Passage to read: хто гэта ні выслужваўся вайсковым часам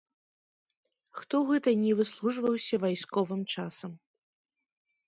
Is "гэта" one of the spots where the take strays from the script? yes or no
no